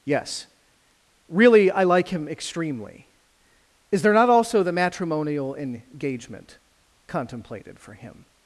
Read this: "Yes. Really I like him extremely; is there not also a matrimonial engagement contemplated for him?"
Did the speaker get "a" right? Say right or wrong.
wrong